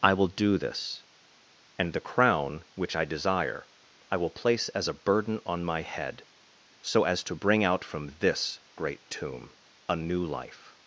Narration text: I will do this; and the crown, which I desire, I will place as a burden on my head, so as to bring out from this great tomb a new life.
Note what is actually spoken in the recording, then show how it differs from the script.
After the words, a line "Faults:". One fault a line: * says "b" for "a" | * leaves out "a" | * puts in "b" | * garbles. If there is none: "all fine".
I will do this; and the crown, which I desire, I will place as a burden on my head, so as to bring out from this great tomb a new life.
Faults:
all fine